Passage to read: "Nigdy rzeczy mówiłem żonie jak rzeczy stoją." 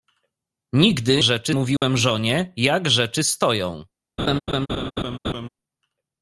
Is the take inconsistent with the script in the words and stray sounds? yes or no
yes